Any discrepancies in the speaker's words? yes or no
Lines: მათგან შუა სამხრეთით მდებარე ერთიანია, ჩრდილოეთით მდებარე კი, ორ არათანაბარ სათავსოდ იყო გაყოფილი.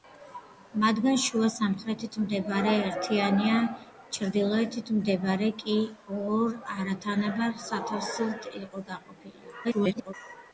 yes